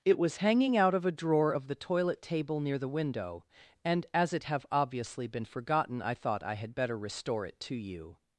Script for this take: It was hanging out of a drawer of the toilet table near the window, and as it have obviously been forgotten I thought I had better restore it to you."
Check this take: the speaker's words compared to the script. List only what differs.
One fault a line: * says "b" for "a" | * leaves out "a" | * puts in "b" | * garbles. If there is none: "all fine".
all fine